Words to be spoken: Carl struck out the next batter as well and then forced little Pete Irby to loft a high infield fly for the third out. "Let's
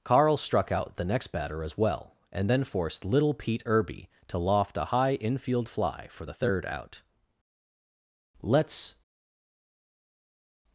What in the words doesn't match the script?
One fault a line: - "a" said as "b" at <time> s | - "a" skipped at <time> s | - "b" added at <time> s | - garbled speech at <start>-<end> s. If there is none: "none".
none